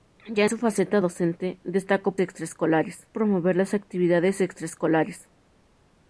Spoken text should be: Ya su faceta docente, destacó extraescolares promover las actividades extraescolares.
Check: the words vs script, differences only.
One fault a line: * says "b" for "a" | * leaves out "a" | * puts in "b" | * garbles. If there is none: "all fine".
all fine